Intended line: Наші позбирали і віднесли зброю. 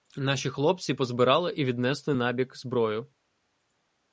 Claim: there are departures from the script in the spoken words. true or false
true